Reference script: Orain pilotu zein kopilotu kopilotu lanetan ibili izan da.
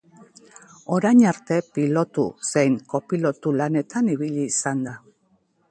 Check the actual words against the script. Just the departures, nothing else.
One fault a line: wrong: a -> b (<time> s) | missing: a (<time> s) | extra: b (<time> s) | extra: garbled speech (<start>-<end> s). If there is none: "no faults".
extra: arte (1.3 s)
missing: kopilotu (3.5 s)